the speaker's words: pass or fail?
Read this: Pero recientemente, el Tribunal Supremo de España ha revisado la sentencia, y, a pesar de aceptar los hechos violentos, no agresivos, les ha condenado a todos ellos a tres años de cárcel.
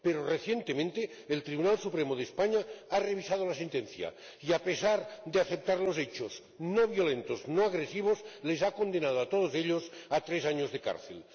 fail